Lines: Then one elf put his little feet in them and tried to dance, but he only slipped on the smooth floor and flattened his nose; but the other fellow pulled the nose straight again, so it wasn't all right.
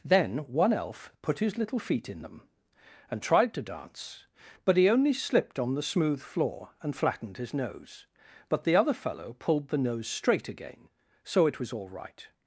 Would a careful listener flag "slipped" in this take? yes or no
no